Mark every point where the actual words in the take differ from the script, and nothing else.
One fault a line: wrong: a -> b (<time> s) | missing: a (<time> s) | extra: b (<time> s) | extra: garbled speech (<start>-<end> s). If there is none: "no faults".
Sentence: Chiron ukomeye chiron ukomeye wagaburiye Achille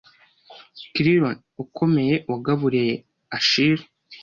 missing: chiron ukomeye (2.1 s)